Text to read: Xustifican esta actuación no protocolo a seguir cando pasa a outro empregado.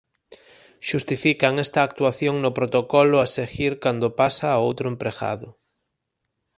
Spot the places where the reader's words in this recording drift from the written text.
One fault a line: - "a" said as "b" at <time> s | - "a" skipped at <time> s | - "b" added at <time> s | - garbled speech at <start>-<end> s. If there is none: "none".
none